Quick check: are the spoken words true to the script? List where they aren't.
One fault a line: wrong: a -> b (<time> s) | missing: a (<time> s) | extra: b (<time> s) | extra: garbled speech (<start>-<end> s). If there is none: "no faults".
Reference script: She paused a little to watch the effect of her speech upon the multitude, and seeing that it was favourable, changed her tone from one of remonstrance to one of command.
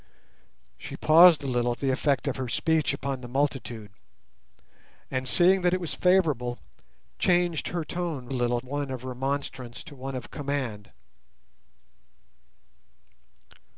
missing: to watch (1.8 s)
wrong: from -> little (8.3 s)